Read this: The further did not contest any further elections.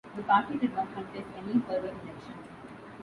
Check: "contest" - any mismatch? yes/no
no